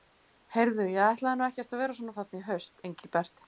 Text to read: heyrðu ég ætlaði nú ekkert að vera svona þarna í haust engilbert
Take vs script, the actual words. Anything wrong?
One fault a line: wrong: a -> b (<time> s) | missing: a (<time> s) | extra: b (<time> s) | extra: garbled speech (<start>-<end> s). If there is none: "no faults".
no faults